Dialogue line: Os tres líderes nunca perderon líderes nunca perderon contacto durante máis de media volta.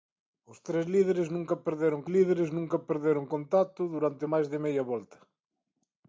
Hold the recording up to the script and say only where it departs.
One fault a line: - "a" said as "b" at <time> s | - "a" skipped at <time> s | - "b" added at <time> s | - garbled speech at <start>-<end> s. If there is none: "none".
none